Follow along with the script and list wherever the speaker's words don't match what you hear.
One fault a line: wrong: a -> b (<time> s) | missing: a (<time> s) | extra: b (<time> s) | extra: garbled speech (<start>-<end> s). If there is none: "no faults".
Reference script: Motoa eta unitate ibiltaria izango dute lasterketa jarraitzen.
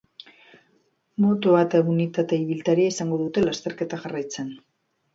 no faults